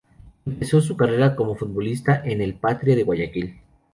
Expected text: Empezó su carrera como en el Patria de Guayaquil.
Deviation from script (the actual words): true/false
true